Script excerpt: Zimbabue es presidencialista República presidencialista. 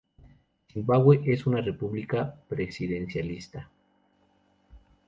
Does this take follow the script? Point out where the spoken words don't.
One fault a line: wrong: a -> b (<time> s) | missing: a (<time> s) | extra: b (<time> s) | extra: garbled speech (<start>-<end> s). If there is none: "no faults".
wrong: presidencialista -> una (1.4 s)